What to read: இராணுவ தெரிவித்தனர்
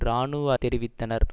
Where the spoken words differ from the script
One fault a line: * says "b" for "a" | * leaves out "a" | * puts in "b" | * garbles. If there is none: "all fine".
all fine